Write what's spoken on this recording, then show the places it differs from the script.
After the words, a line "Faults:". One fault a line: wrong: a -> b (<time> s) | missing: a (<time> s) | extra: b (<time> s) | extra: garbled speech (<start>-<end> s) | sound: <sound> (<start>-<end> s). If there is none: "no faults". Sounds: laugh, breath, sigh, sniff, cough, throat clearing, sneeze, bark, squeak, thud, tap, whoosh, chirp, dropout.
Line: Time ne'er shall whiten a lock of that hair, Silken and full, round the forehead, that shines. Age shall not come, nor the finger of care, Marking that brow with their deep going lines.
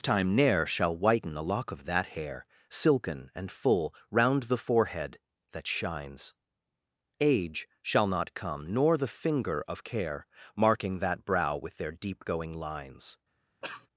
Time ne'er shall whiten a lock of that hair, Silken and full, round the forehead, that shines. Age shall not come, nor the finger of care, Marking that brow with their deep going lines.
Faults:
sound: cough (13.6-13.9 s)